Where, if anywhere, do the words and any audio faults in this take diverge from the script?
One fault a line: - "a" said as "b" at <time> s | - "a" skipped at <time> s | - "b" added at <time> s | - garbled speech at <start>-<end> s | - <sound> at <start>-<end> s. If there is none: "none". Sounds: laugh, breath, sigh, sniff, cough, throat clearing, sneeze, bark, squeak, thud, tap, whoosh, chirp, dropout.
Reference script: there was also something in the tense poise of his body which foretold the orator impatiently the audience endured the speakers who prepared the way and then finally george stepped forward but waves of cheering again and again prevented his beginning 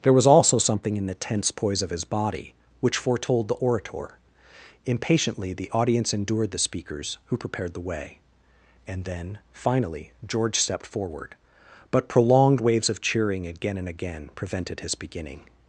- "prolonged" added at 12.1 s